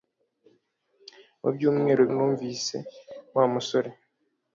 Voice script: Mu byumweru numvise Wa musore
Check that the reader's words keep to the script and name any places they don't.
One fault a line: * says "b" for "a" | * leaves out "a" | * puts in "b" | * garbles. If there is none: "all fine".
all fine